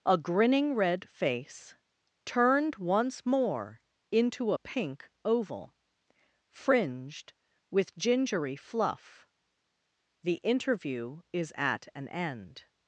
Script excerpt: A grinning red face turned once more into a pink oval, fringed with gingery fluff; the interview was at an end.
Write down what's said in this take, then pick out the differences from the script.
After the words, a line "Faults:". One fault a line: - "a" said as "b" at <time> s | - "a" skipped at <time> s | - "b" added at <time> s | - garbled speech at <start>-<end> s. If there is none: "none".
A grinning red face turned once more into a pink oval, fringed with gingery fluff; the interview is at an end.
Faults:
- "was" said as "is" at 11.3 s